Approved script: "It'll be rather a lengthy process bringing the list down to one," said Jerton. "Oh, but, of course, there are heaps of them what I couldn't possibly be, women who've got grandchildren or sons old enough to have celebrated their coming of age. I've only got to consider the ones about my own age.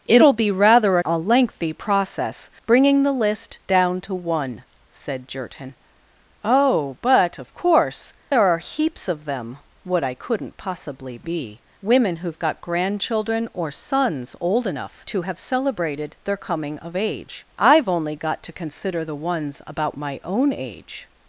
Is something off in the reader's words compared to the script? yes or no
no